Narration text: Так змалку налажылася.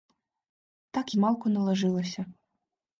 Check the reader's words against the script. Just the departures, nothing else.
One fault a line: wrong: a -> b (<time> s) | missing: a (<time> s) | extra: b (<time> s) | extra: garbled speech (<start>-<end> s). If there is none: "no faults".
no faults